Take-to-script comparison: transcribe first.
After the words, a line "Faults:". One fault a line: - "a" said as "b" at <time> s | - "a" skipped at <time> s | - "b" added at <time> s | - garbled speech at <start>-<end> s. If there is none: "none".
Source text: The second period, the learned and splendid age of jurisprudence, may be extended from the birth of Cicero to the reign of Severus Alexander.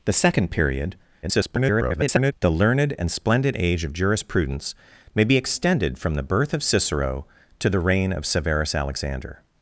The second period, [garbled] the learned and splendid age of jurisprudence, may be extended from the birth of Cicero to the reign of Severus Alexander.
Faults:
- garbled speech at 1.2-2.3 s